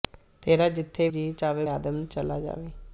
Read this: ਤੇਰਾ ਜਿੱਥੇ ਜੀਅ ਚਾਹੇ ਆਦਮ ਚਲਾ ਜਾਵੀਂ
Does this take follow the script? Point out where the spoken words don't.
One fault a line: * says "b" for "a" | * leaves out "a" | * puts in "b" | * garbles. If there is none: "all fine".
all fine